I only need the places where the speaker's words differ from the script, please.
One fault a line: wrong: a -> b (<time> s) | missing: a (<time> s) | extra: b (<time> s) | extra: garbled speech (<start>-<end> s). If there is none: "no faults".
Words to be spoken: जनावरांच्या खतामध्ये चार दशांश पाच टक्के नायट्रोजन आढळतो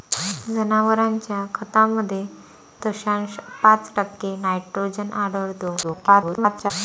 missing: चार (2.2 s)
extra: garbled speech (5.8-6.7 s)